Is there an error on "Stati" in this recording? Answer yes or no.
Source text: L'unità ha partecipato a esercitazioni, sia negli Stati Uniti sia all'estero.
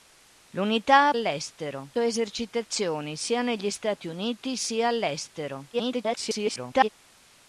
no